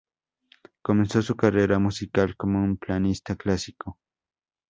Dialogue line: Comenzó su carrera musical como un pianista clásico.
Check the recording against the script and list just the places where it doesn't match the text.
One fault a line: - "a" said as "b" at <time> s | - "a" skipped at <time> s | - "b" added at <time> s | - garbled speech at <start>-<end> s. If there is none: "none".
none